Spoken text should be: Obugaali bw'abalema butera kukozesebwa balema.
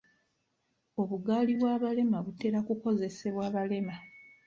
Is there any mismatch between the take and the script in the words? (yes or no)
no